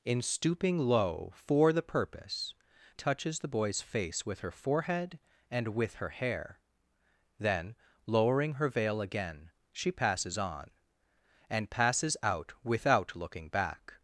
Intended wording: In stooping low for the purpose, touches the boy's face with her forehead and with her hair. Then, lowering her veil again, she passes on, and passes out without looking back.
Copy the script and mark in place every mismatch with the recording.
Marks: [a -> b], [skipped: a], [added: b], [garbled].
In stooping low for the purpose, touches the boy's face with her forehead and with her hair. Then, lowering her veil again, she passes on, and passes out without looking back.